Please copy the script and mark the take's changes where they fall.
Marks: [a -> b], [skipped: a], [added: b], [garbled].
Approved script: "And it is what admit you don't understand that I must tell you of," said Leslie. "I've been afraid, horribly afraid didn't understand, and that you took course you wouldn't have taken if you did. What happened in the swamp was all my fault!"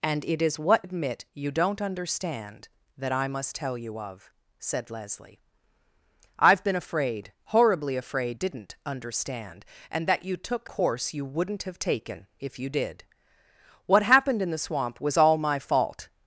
"And it is what admit you don't understand that I must tell you of," said Leslie. "I've been afraid, horribly afraid didn't understand, and that you took course you wouldn't have taken if you did. What happened in the swamp was all my fault!"